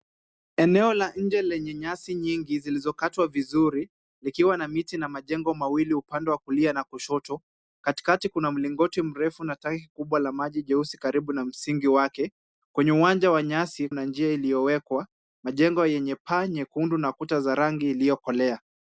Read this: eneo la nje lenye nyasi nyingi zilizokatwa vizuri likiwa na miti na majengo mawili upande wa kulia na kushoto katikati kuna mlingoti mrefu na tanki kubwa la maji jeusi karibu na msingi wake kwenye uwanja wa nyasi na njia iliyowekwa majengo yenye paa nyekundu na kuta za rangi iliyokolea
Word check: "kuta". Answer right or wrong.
right